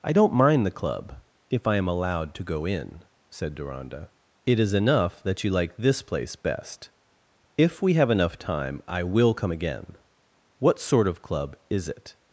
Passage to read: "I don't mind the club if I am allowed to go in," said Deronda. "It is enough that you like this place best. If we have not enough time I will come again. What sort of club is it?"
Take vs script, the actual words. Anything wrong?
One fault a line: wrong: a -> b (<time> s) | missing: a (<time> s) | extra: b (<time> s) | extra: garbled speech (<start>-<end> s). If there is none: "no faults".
missing: not (8.1 s)